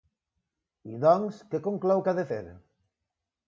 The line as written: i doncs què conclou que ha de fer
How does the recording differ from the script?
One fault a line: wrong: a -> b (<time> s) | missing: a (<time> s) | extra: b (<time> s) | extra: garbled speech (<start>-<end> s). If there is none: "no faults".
no faults